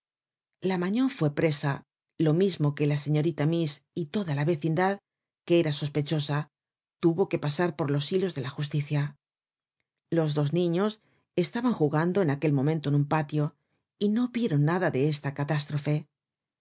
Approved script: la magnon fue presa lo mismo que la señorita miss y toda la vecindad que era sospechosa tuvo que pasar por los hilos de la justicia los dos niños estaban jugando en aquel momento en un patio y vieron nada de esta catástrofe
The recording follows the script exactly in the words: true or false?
false